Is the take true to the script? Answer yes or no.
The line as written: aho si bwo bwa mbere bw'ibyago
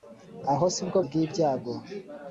no